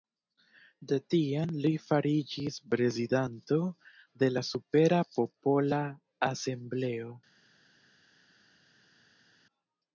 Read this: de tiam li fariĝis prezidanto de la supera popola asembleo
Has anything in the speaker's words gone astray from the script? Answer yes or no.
no